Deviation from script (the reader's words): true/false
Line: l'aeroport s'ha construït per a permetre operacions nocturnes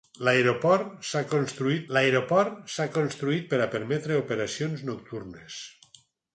true